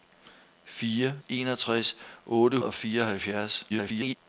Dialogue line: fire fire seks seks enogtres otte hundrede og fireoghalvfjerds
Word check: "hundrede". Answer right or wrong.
wrong